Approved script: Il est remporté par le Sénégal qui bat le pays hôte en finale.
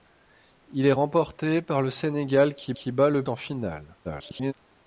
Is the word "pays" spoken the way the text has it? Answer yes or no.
no